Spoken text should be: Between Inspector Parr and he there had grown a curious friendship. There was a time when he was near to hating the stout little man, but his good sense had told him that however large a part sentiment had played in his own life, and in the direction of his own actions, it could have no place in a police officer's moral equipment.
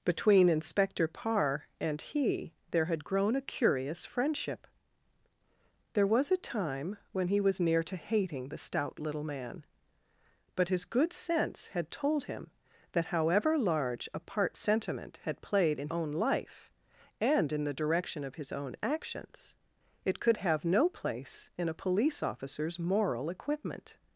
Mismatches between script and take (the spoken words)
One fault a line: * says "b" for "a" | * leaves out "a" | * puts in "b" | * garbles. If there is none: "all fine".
* leaves out "his"